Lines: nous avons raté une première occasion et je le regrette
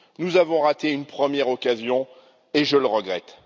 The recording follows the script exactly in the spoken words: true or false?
true